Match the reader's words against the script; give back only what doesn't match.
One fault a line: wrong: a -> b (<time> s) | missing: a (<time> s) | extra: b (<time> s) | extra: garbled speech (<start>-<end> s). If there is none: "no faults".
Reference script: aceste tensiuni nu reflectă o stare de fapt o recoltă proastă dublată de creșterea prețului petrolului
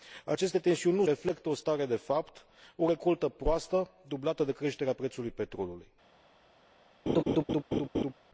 no faults